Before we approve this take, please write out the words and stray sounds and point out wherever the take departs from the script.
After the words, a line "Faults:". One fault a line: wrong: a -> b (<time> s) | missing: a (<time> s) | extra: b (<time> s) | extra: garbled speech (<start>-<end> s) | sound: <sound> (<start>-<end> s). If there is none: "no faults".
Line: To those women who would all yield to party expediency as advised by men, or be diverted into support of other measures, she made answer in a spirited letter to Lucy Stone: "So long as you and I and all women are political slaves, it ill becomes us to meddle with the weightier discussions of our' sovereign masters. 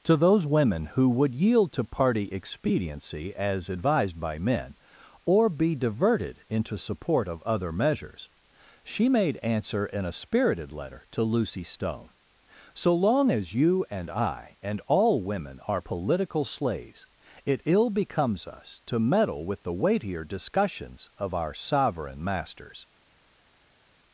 To those women who would yield to party expediency as advised by men, or be diverted into support of other measures, she made answer in a spirited letter to Lucy Stone: "So long as you and I and all women are political slaves, it ill becomes us to meddle with the weightier discussions of our' sovereign masters.
Faults:
missing: all (1.4 s)